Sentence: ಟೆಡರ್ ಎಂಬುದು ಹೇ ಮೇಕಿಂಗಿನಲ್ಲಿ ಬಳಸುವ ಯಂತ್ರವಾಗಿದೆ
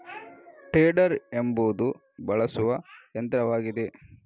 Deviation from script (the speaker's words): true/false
true